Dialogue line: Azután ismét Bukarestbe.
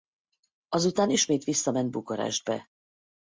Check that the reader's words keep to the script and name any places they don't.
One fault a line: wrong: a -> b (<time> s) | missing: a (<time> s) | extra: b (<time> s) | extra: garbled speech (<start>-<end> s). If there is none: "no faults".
extra: visszament (1.4 s)